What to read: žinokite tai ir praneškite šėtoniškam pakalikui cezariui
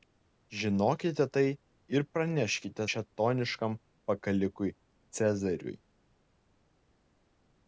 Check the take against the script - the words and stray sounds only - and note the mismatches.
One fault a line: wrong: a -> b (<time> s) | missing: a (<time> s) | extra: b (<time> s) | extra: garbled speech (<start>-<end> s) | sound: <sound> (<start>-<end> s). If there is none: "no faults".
no faults